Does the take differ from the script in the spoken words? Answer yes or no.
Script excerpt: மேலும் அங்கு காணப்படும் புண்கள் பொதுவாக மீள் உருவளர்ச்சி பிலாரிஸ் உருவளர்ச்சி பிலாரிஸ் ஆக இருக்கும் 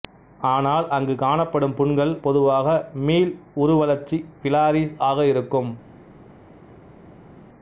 yes